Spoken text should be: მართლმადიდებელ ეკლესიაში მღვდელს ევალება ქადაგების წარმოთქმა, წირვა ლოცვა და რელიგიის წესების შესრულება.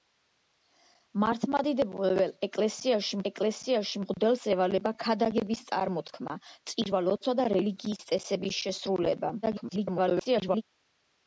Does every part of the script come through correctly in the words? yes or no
no